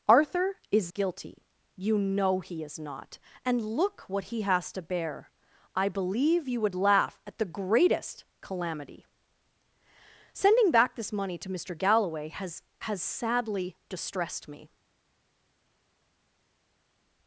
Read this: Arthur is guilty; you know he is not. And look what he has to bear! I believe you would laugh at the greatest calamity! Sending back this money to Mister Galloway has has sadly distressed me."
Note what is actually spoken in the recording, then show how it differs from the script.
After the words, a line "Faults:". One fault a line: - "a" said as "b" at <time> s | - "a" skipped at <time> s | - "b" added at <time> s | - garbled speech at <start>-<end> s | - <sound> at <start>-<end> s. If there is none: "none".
Arthur is guilty; you know he is not. And look what he has to bear! I believe you would laugh at the greatest calamity! Sending back this money to Mister Galloway has has sadly distressed me."
Faults:
none